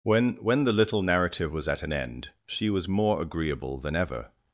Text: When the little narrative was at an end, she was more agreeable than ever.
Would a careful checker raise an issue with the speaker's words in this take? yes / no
yes